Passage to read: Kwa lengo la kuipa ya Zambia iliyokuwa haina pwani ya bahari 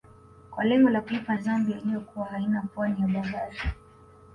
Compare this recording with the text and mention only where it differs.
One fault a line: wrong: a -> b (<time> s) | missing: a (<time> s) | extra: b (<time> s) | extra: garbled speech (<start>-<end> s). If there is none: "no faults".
no faults